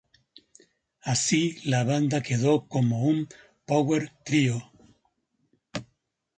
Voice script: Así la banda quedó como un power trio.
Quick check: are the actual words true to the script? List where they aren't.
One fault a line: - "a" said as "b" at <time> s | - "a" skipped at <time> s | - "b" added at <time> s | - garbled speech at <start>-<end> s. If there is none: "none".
none